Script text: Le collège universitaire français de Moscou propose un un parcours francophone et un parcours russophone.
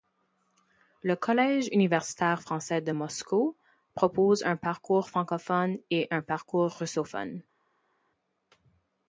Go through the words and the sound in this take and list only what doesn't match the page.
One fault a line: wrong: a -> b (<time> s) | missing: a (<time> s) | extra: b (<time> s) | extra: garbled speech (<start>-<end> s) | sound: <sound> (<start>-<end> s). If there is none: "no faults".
missing: un (4.5 s)